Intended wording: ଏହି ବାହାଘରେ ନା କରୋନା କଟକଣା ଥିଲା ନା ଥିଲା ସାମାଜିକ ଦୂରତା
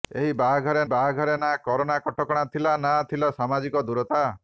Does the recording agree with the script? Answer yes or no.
no